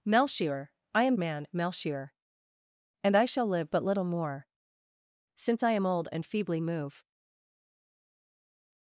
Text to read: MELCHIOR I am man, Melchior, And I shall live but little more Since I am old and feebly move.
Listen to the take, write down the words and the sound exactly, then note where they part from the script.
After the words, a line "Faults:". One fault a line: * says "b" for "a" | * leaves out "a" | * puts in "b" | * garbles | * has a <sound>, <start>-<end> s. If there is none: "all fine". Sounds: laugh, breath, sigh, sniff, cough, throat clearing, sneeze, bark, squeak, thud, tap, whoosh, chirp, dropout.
MELCHIOR I am man, Melchior, And I shall live but little more Since I am old and feebly move.
Faults:
all fine